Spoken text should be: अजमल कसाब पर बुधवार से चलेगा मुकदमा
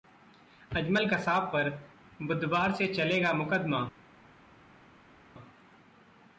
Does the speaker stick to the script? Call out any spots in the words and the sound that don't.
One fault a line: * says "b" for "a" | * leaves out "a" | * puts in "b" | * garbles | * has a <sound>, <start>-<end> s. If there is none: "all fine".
all fine